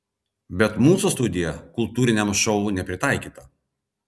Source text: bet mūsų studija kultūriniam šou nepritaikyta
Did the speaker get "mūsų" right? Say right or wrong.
right